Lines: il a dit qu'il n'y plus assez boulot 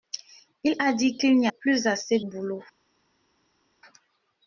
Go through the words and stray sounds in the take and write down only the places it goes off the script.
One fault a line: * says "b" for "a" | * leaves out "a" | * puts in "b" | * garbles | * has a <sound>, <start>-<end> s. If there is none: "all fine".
all fine